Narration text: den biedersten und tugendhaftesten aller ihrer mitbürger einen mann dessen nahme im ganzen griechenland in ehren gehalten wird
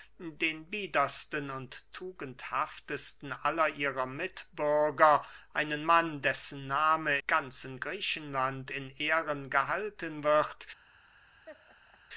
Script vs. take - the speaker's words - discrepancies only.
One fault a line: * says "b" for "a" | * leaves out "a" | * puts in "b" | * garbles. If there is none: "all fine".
* leaves out "im"